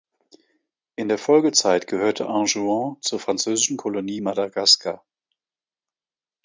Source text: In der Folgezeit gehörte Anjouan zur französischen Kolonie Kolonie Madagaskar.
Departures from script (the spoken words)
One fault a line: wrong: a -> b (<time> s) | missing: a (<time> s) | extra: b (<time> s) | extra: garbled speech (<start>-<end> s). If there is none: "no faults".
missing: Kolonie (4.2 s)